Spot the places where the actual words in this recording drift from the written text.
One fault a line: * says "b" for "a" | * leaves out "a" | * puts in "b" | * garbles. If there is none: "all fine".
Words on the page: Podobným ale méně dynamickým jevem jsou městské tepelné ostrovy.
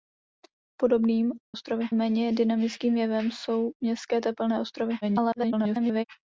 * says "ostrovy" for "ale"
* garbles